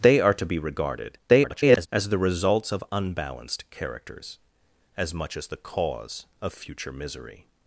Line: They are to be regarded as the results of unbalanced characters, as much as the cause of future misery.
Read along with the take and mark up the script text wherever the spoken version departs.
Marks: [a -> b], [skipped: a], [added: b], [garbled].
They are to be regarded [garbled] as the results of unbalanced characters, as much as the cause of future misery.